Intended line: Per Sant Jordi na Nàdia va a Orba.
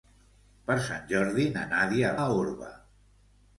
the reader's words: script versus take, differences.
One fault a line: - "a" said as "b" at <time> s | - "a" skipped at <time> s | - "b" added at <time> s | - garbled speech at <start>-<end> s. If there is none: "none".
- "va" skipped at 2.1 s